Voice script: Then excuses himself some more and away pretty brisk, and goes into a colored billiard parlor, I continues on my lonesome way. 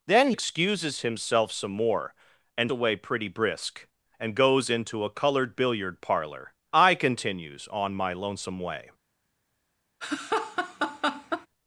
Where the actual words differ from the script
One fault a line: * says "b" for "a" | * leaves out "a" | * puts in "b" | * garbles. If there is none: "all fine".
all fine